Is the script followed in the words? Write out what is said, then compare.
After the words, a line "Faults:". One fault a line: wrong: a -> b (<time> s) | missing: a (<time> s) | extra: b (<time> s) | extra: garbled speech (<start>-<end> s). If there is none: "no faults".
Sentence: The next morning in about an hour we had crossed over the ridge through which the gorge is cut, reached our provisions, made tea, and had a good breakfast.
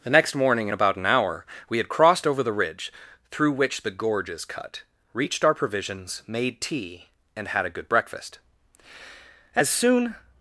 The next morning in about an hour we had crossed over the ridge through which the gorge is cut, reached our provisions, made tea, and had a good breakfast. As soon
Faults:
extra: As soon (9.5 s)